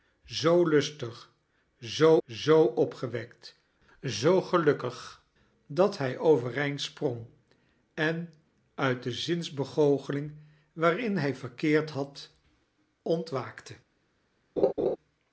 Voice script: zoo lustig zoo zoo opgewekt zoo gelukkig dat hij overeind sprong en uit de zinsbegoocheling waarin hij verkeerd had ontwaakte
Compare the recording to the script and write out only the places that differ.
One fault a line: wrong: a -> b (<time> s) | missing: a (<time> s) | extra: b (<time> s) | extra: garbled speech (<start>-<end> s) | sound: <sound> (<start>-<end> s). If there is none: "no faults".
sound: laugh (14.6-15.0 s)